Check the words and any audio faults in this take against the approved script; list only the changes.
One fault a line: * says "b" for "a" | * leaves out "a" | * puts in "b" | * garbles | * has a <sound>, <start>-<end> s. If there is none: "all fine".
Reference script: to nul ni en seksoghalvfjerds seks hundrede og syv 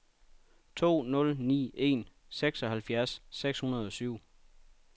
all fine